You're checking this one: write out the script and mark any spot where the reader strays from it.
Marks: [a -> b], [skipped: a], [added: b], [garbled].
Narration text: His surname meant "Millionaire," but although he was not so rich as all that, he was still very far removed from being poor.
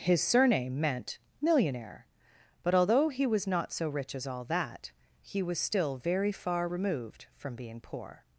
His surname meant "Millionaire," but although he was not so rich as all that, he was still very far removed from being poor.